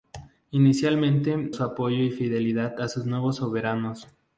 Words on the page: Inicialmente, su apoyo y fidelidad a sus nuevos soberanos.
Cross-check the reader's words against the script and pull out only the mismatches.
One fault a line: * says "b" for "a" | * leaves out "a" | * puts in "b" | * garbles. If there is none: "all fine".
all fine